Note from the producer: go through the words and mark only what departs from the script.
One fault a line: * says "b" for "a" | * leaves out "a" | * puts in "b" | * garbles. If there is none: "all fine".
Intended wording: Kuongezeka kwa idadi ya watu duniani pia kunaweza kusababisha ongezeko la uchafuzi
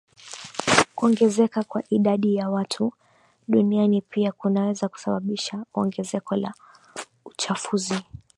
all fine